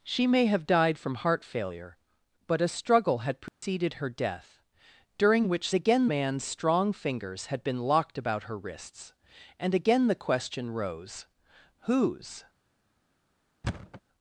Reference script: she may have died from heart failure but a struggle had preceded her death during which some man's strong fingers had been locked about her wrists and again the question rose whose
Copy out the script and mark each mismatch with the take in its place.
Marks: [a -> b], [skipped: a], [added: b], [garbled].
she may have died from heart failure but a struggle had preceded her death during which [some -> again] man's strong fingers had been locked about her wrists and again the question rose whose